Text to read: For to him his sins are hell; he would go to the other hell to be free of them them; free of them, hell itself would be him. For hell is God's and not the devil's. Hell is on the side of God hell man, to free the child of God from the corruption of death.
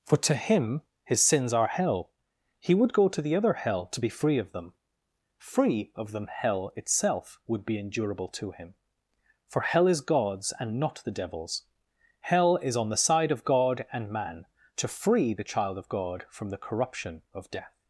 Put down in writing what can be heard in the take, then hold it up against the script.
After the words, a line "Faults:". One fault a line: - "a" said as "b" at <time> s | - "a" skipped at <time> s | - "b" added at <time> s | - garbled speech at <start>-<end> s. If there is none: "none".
For to him his sins are hell; he would go to the other hell to be free of them; free of them, hell itself would be endurable to him. For hell is God's and not the devil's. Hell is on the side of God and man, to free the child of God from the corruption of death.
Faults:
- "them" skipped at 4.7 s
- "endurable to" added at 7.8 s
- "hell" said as "and" at 13.9 s